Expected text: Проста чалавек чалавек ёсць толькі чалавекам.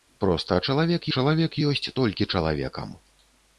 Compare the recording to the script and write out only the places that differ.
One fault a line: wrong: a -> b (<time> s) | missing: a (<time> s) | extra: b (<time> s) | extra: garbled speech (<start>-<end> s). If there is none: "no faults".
no faults